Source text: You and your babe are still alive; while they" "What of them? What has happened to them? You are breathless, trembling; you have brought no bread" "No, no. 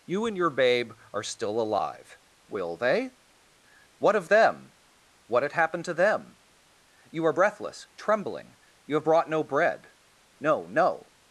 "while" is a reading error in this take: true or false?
true